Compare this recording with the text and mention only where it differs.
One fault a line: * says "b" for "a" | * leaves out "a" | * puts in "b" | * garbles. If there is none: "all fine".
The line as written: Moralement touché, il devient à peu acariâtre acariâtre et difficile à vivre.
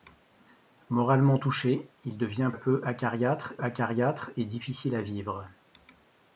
all fine